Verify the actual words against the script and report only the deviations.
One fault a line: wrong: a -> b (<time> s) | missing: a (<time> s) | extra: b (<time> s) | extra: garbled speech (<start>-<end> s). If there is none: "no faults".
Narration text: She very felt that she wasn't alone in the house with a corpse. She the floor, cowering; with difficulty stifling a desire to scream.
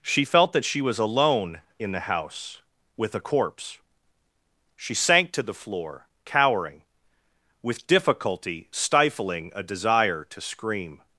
missing: very (0.2 s)
wrong: wasn't -> was (0.8 s)
extra: sank to (5.0 s)